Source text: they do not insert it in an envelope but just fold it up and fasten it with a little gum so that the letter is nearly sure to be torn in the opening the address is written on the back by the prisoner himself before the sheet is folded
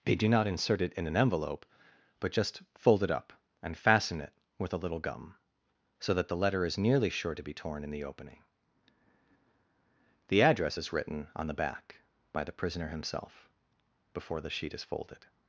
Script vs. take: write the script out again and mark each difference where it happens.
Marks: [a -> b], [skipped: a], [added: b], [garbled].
they do not insert it in an envelope but just fold it up and fasten it with a little gum so that the letter is nearly sure to be torn in the opening the address is written on the back by the prisoner himself before the sheet is folded